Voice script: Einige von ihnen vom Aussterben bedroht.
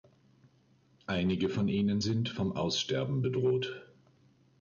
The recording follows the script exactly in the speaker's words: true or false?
false